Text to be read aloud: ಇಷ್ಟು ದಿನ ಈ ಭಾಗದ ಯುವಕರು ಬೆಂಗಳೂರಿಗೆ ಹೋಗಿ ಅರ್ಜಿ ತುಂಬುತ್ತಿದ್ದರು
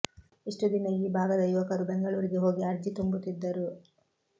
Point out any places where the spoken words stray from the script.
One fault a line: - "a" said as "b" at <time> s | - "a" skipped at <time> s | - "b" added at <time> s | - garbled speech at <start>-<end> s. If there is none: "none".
none